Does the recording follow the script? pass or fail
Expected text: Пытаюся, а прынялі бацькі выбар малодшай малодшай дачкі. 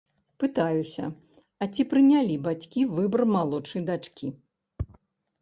fail